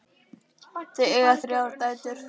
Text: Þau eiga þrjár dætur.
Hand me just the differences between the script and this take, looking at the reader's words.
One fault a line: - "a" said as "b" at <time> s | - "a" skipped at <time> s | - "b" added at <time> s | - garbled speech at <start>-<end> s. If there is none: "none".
none